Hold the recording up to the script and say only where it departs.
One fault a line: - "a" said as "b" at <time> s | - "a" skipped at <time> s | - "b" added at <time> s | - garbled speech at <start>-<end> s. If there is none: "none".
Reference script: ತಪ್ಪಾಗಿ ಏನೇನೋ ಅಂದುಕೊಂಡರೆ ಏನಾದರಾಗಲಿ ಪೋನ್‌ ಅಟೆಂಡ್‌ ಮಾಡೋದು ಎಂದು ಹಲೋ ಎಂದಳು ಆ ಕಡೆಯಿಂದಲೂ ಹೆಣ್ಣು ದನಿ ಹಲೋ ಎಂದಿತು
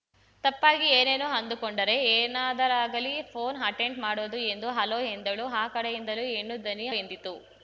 - "ಹಲೋ" skipped at 6.9 s